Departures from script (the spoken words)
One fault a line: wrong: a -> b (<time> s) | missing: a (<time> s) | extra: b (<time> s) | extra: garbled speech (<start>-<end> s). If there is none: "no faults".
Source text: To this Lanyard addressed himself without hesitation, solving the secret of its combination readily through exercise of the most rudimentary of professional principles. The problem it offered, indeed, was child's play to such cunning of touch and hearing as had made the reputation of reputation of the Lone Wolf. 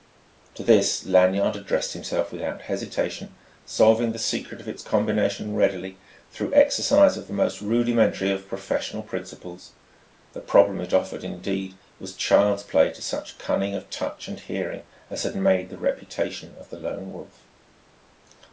missing: reputation of (16.7 s)